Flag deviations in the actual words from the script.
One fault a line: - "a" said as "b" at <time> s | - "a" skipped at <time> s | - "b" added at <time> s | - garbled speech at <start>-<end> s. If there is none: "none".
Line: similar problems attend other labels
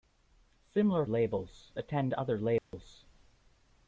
- "problems" said as "labels" at 1.0 s